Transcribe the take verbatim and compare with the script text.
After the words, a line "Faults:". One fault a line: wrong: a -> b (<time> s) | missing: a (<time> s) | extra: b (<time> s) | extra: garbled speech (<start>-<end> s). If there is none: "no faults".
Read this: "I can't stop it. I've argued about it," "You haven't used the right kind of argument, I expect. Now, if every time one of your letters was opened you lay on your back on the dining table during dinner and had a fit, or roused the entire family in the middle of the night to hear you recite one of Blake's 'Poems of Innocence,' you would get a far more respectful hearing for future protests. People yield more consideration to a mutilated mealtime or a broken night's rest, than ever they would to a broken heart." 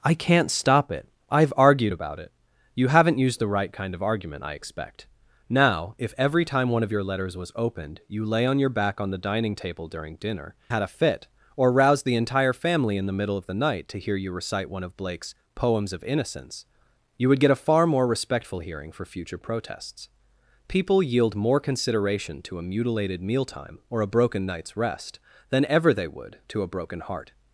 "I can't stop it. I've argued about it," "You haven't used the right kind of argument, I expect. Now, if every time one of your letters was opened you lay on your back on the dining table during dinner had a fit, or roused the entire family in the middle of the night to hear you recite one of Blake's 'Poems of Innocence,' you would get a far more respectful hearing for future protests. People yield more consideration to a mutilated mealtime or a broken night's rest, than ever they would to a broken heart."
Faults:
missing: and (10.5 s)